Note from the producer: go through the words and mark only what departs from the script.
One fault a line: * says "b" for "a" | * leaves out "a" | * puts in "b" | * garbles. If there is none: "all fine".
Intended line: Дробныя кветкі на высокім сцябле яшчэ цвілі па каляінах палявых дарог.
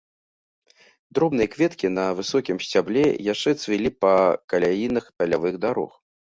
all fine